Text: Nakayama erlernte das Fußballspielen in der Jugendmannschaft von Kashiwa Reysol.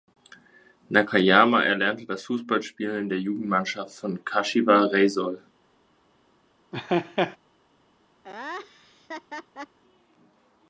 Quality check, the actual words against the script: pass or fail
pass